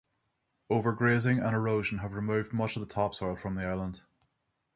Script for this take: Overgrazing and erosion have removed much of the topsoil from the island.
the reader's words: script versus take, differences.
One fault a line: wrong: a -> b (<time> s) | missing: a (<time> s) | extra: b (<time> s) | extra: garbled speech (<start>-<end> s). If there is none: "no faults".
no faults